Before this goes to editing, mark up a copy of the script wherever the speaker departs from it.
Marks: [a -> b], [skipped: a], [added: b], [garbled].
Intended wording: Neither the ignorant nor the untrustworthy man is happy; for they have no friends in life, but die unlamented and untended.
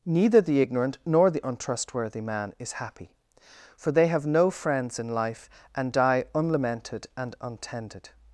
Neither the ignorant nor the untrustworthy man is happy; for they have no friends in life, [but -> and] die unlamented and untended.